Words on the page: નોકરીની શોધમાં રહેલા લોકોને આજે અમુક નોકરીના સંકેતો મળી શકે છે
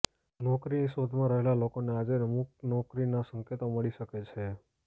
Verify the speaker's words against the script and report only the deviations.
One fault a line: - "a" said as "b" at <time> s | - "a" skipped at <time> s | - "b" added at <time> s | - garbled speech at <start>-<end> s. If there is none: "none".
none